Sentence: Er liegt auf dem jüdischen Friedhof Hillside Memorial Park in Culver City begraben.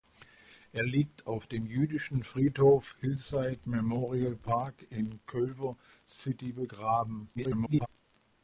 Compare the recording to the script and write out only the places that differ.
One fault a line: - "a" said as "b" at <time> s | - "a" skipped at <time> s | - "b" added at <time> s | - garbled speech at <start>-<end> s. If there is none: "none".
- garbled speech at 7.3-7.9 s